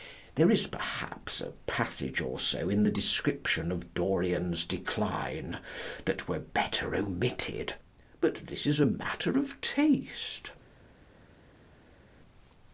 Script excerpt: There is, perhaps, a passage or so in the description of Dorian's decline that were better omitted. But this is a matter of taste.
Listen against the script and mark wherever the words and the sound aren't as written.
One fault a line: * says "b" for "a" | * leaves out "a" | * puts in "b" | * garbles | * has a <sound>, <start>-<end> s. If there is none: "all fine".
all fine